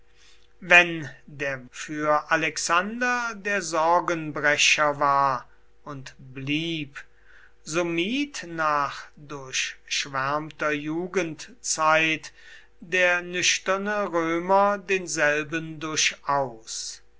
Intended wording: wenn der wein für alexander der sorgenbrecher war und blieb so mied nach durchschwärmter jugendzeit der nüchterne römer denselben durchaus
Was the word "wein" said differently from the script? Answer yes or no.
yes